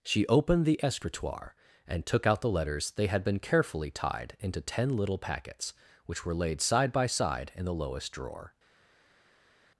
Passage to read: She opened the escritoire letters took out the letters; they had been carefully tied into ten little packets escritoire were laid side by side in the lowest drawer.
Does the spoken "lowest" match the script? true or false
true